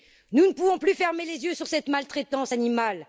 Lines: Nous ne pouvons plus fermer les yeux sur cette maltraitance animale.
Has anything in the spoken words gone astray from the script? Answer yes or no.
no